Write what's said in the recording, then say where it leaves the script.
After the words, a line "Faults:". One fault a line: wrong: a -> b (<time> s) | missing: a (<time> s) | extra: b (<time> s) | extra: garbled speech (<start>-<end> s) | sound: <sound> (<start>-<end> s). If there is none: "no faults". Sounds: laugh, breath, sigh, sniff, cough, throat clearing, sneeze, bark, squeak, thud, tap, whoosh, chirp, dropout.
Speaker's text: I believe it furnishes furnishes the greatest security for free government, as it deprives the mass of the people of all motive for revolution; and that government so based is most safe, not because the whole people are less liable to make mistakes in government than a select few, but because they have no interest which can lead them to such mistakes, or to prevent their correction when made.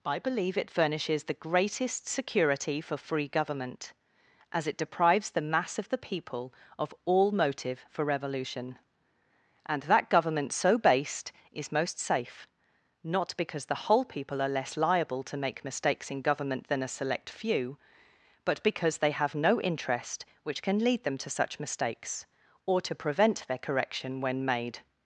I believe it furnishes the greatest security for free government, as it deprives the mass of the people of all motive for revolution; and that government so based is most safe, not because the whole people are less liable to make mistakes in government than a select few, but because they have no interest which can lead them to such mistakes, or to prevent their correction when made.
Faults:
missing: furnishes (1.2 s)